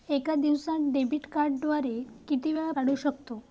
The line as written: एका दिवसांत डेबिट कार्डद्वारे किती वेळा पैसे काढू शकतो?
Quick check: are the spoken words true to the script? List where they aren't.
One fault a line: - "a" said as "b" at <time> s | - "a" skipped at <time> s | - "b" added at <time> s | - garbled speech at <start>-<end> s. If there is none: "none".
- "पैसे" skipped at 2.7 s